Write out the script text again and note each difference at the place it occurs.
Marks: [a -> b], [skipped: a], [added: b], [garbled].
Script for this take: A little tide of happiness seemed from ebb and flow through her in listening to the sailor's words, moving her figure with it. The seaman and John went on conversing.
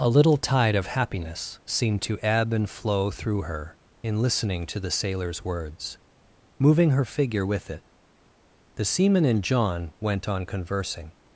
A little tide of happiness seemed [from -> to] ebb and flow through her in listening to the sailor's words, moving her figure with it. The seaman and John went on conversing.